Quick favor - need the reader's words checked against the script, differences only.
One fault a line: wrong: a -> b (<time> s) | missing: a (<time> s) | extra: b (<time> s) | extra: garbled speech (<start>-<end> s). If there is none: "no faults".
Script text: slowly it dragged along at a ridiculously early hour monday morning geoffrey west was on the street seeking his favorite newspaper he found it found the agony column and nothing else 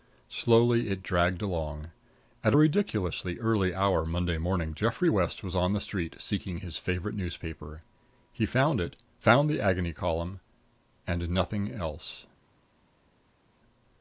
no faults